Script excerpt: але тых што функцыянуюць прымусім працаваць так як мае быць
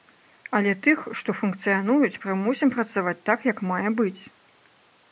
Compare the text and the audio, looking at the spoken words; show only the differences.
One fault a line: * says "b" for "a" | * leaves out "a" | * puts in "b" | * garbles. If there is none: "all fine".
all fine